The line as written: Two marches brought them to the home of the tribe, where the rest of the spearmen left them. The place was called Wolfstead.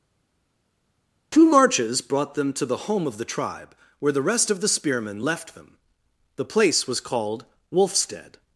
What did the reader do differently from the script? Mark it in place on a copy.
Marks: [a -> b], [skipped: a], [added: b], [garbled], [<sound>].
Two marches brought them to the home of the tribe, where the rest of the spearmen left them. The place was called Wolfstead.